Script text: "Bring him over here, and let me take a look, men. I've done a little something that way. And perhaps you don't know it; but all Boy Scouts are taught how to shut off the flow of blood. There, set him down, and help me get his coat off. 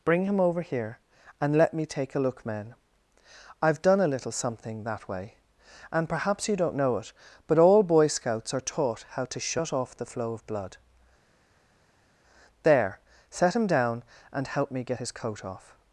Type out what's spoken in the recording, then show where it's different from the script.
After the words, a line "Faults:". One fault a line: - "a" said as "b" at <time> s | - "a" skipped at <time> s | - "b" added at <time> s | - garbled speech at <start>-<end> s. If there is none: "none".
"Bring him over here, and let me take a look, men. I've done a little something that way. And perhaps you don't know it; but all Boy Scouts are taught how to shut off the flow of blood. There, set him down, and help me get his coat off.
Faults:
none